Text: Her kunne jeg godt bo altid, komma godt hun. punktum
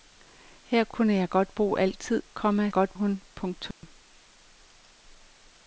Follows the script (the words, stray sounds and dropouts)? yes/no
no